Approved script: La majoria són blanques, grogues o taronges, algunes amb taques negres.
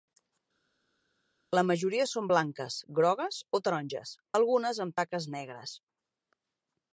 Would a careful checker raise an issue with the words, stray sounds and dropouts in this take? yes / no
no